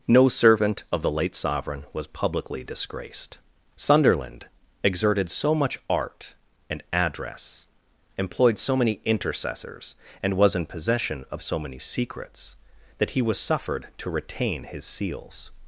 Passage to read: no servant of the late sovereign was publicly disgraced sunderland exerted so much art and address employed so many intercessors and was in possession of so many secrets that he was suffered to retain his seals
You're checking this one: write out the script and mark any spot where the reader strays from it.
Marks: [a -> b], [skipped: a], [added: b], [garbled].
no servant of the late sovereign was publicly disgraced sunderland exerted so much art and address employed so many intercessors and was in possession of so many secrets that he was suffered to retain his seals